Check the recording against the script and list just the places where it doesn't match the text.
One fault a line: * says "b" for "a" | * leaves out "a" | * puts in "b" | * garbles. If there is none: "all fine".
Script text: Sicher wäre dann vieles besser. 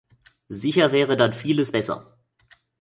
all fine